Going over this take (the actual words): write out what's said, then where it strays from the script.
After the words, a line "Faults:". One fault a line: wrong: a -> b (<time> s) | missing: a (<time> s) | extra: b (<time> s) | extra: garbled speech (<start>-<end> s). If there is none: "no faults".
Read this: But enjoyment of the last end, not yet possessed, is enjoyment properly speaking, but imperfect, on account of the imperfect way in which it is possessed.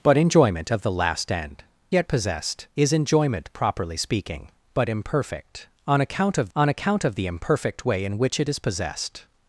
But enjoyment of the last end, yet possessed, is enjoyment properly speaking, but imperfect, on account of on account of the imperfect way in which it is possessed.
Faults:
missing: not (1.6 s)
extra: on account of (6.6 s)